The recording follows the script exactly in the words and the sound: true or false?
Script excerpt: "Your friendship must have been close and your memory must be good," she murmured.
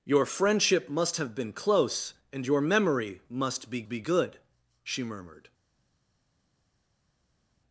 false